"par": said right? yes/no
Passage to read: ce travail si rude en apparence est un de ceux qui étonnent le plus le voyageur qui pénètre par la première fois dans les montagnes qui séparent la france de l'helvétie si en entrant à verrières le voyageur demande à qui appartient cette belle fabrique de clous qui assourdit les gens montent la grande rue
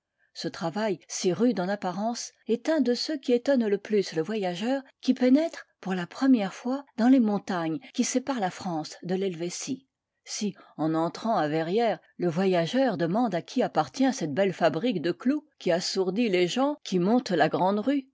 no